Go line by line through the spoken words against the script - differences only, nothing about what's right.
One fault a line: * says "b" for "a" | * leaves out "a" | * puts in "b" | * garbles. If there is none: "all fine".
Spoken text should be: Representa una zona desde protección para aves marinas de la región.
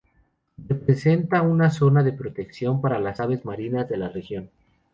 * says "de" for "desde"
* puts in "las"